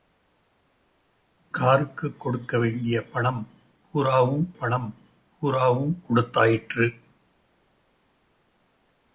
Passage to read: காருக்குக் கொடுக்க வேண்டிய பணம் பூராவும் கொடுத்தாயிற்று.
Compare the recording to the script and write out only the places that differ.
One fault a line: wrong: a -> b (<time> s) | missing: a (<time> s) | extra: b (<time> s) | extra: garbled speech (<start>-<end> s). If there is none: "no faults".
extra: பணம் பூராவும் (4.5 s)